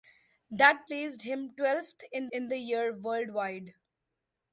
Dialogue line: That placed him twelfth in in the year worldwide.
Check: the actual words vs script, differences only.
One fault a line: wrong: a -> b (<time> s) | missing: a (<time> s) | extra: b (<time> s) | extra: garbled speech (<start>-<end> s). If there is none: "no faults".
no faults